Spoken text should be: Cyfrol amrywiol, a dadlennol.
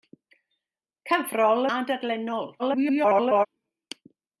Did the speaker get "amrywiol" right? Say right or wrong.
wrong